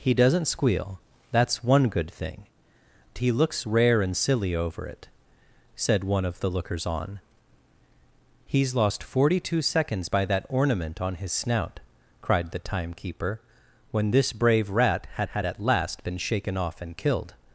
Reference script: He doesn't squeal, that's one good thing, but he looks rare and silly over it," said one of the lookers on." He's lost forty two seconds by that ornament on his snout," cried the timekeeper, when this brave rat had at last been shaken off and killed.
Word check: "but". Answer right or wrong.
wrong